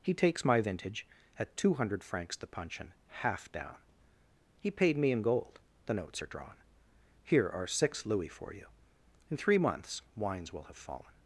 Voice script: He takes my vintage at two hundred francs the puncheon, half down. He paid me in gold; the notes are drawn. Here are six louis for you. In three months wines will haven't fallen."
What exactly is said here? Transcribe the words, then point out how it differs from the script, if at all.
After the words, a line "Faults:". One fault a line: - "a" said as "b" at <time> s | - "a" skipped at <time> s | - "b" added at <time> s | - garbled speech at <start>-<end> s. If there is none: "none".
He takes my vintage at two hundred francs the puncheon, half down. He paid me in gold; the notes are drawn. Here are six louis for you. In three months wines will have fallen."
Faults:
- "haven't" said as "have" at 10.6 s